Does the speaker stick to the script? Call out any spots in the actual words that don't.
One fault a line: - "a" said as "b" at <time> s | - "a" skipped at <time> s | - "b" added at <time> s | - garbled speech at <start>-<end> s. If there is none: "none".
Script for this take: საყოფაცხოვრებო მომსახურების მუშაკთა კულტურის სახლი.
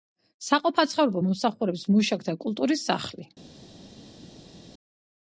none